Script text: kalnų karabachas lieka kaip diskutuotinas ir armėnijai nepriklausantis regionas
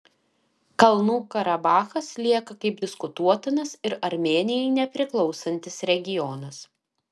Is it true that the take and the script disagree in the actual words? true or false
false